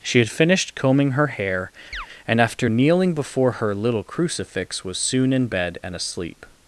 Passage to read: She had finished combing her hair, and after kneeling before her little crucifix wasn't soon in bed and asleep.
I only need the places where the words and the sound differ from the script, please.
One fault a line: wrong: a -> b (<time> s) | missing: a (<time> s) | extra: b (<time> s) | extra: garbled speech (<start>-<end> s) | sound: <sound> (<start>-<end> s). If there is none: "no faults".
sound: chirp (1.9-2.1 s)
wrong: wasn't -> was (4.8 s)